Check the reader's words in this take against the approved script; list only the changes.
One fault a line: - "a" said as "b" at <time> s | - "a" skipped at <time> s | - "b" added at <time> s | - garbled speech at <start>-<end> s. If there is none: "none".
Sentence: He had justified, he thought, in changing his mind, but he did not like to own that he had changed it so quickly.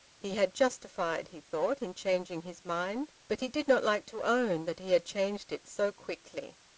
none